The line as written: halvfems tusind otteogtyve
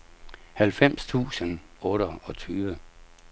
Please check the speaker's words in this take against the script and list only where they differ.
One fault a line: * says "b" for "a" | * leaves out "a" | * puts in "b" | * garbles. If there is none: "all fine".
all fine